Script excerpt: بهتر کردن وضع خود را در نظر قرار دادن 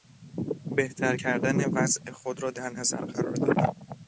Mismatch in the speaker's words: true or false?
false